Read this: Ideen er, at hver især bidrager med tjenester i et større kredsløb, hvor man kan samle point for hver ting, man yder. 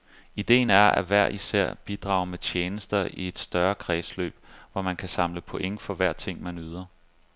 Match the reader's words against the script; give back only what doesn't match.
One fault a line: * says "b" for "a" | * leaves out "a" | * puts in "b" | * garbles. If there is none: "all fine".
all fine